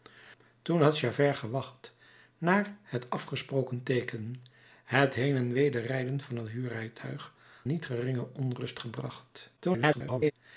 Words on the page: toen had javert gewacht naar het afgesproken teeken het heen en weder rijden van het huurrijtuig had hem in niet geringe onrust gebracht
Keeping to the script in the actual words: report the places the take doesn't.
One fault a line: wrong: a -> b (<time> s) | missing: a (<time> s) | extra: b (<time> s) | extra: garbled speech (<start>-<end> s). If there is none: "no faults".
missing: had hem in (7.3 s)
extra: garbled speech (9.6-10.3 s)